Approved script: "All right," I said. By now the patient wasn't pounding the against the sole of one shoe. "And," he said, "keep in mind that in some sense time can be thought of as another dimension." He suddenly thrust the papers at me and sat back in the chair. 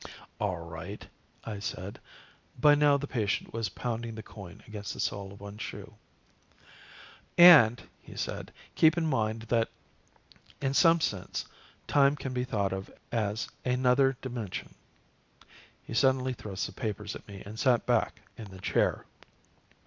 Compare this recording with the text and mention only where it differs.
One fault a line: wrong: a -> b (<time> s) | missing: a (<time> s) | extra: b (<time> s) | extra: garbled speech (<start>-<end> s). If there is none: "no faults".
wrong: wasn't -> was (3.5 s)
extra: coin (4.2 s)